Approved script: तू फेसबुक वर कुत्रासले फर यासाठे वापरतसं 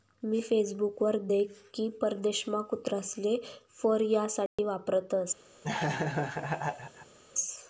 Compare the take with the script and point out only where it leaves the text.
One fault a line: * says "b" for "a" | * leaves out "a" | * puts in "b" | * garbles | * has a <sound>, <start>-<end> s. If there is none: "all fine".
* says "मी" for "तू"
* puts in "देख की परदेशमा"
* has a dropout, 4.5-4.6 s
* has a laugh, 5.6-7.2 s